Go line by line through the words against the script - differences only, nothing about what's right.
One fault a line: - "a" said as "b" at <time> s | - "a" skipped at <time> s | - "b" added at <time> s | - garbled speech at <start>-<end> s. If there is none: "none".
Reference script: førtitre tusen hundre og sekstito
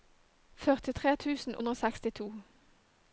none